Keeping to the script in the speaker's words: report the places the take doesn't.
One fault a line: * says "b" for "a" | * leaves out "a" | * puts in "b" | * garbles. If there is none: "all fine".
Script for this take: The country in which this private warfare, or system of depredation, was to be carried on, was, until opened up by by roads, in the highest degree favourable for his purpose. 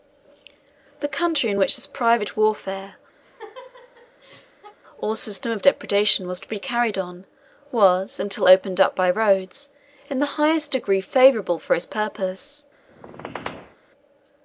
* leaves out "by"